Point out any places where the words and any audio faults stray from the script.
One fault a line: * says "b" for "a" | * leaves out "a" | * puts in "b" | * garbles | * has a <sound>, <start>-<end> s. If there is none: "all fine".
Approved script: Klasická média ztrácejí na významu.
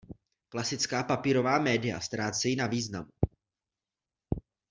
* puts in "papírová"